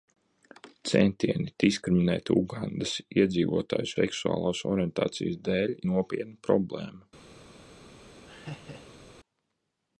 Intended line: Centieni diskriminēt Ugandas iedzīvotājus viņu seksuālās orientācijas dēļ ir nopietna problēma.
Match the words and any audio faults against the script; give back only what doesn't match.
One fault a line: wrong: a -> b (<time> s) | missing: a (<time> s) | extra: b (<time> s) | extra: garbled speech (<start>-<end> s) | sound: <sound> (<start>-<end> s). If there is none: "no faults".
missing: viņu (3.9 s)
missing: ir (5.8 s)
sound: laugh (8.3-9.1 s)